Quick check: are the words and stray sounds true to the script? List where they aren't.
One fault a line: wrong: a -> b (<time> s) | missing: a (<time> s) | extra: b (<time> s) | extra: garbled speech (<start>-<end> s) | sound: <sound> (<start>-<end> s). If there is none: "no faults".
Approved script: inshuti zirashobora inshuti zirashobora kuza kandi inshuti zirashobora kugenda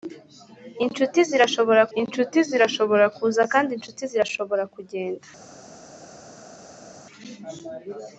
no faults